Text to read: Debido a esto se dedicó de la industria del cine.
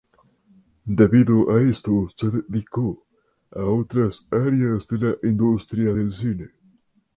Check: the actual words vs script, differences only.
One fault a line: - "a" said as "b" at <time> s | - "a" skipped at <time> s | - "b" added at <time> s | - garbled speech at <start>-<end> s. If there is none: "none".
- "a otras áreas" added at 3.5 s